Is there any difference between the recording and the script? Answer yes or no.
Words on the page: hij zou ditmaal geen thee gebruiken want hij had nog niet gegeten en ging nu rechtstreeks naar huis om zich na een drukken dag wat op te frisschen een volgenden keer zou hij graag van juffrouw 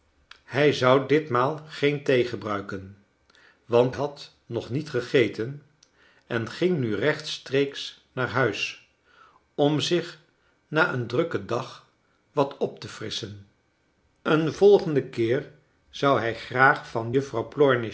yes